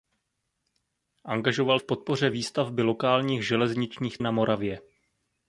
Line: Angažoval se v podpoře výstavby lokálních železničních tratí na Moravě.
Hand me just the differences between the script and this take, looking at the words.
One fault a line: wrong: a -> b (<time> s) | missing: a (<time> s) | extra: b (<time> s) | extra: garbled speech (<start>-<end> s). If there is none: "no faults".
missing: se (1.8 s)
missing: tratí (4.2 s)